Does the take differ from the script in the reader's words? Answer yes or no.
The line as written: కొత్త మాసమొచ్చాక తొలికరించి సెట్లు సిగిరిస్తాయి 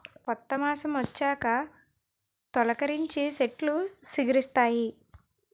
no